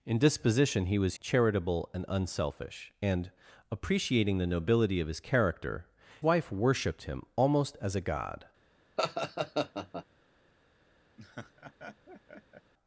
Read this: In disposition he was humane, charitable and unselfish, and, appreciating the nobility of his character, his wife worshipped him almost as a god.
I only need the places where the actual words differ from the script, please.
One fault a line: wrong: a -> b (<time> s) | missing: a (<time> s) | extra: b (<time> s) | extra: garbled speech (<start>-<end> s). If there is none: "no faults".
missing: humane (1.1 s)
missing: his (5.9 s)